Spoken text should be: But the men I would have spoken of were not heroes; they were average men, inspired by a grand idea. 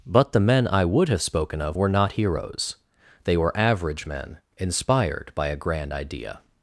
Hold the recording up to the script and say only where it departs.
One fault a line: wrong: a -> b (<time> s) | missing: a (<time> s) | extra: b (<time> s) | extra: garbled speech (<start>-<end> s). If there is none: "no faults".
no faults